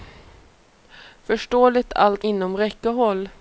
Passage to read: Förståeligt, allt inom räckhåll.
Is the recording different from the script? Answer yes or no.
no